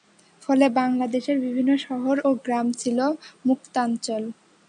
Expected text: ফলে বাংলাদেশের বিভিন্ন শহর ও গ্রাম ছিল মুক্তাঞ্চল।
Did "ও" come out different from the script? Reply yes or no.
no